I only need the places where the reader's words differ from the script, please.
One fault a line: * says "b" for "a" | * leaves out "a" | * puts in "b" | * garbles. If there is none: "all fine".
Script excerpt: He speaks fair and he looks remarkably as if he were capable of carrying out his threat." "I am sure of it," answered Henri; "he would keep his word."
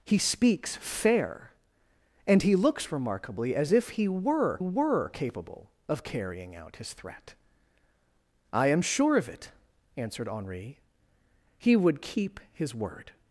* puts in "were"